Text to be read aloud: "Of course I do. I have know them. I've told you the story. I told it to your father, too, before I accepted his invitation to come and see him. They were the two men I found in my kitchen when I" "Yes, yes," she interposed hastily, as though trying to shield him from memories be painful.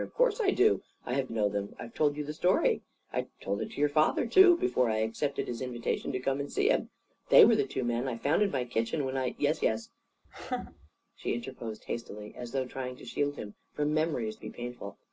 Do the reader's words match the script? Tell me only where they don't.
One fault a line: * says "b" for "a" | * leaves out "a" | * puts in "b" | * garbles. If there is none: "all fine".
all fine